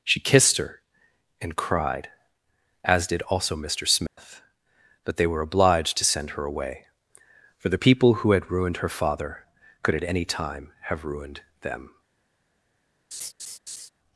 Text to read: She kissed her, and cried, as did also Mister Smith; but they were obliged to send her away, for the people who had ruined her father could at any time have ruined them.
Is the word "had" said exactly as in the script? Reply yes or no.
yes